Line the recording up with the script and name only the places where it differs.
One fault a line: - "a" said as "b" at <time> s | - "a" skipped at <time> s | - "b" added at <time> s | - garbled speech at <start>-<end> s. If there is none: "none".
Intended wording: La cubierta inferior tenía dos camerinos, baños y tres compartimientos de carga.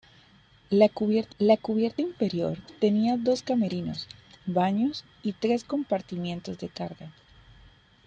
- "la cubierta" added at 1.4 s